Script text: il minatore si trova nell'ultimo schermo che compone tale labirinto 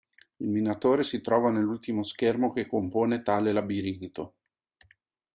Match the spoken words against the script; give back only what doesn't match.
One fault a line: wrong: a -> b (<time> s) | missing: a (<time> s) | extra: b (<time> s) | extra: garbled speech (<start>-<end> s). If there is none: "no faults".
no faults